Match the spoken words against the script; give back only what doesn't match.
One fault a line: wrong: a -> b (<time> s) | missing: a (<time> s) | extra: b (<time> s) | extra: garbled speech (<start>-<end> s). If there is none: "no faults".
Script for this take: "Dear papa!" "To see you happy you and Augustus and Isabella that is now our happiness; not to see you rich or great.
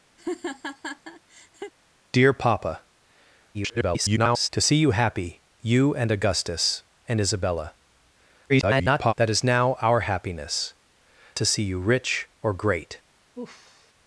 extra: garbled speech (3.5-4.5 s)
extra: garbled speech (8.5-9.1 s)
missing: not (10.7 s)